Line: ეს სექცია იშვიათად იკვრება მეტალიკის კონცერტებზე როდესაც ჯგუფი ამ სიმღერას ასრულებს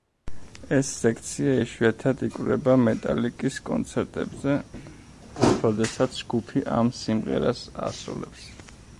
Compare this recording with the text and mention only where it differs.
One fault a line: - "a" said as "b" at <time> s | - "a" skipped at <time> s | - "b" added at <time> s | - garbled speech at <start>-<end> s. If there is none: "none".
none